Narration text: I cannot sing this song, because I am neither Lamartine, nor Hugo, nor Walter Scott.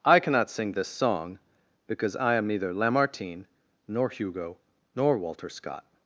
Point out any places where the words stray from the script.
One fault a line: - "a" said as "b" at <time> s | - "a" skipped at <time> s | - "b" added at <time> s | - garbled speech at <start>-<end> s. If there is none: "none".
none